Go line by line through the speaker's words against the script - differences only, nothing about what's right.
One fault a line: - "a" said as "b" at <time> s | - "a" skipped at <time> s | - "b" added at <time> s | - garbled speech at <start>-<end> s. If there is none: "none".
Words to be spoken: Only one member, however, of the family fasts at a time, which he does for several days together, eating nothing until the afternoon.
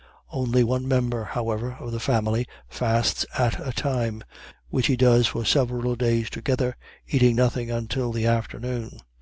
none